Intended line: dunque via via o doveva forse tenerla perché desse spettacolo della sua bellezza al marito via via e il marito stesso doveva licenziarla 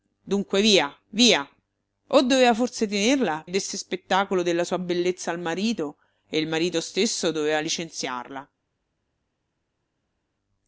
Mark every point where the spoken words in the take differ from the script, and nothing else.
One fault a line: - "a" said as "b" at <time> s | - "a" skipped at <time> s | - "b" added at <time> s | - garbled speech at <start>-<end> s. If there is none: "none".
- "perché" skipped at 3.5 s
- "via via" skipped at 6.0 s